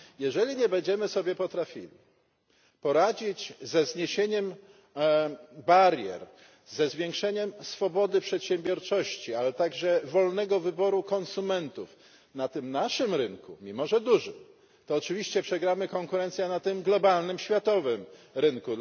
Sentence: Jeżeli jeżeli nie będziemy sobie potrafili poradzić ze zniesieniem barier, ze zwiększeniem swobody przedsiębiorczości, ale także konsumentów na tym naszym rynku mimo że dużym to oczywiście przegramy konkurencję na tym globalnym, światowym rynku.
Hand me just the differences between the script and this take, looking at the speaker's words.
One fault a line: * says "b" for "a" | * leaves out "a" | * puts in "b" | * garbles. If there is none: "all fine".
* leaves out "jeżeli"
* puts in "wolnego wyboru"